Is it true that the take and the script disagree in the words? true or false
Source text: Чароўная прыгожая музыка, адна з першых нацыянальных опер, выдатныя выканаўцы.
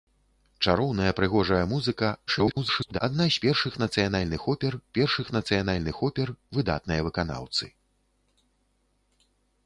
true